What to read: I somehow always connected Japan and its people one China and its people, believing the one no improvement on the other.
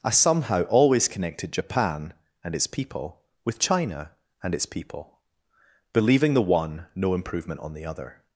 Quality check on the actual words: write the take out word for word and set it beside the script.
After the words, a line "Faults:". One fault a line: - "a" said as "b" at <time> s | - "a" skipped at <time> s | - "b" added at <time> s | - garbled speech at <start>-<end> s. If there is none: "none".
I somehow always connected Japan and its people with China and its people, believing the one no improvement on the other.
Faults:
- "one" said as "with" at 3.5 s